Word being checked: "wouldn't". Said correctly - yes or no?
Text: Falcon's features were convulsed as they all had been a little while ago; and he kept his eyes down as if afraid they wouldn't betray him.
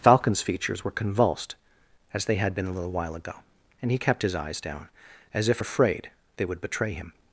no